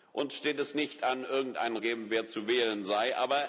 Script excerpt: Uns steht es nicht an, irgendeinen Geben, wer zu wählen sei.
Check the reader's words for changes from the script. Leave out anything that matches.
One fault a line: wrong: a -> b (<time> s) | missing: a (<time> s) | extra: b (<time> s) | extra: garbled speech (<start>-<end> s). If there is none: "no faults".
no faults